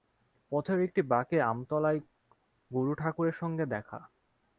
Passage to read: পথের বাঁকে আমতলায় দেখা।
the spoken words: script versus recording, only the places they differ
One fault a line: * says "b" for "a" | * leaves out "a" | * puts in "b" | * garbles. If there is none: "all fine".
* puts in "একটি"
* puts in "গুরুঠাকুরের সঙ্গে"